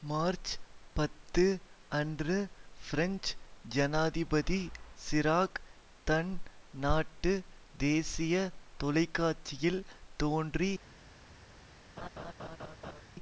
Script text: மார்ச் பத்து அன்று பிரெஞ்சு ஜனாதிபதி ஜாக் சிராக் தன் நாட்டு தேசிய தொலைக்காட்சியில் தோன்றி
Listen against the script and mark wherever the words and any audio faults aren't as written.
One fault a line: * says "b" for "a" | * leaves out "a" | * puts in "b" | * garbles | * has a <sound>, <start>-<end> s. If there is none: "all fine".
* leaves out "ஜாக்"
* has a laugh, 12.0-13.0 s